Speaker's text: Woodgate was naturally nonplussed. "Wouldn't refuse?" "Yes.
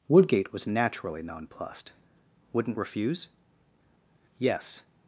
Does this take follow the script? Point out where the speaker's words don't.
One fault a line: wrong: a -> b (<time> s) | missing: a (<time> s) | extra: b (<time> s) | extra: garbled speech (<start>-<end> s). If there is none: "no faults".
no faults